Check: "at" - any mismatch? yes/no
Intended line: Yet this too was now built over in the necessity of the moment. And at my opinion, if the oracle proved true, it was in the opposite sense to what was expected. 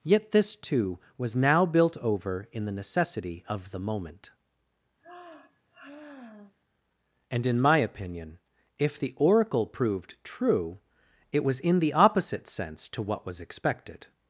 yes